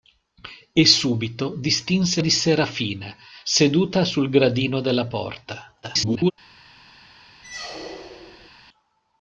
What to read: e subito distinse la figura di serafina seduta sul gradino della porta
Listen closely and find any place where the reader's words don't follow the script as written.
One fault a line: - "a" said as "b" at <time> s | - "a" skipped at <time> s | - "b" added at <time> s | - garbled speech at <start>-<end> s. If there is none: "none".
- "la figura" skipped at 2.2 s
- garbled speech at 5.8-6.3 s